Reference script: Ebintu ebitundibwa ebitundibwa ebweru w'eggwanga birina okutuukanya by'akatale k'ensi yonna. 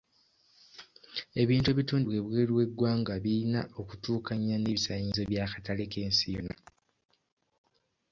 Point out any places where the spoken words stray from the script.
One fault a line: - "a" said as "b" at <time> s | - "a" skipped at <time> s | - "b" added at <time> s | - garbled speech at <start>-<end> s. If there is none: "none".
- "ebitundibwa" skipped at 2.2 s
- "n'ebisaanyizo" added at 4.6 s